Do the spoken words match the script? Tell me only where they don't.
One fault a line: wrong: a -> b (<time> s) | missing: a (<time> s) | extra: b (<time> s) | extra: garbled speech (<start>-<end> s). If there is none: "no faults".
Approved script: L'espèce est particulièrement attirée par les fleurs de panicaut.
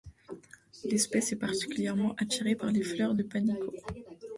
no faults